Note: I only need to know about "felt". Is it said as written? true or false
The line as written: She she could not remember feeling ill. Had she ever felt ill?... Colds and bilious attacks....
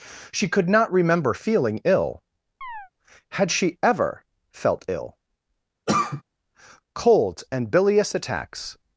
true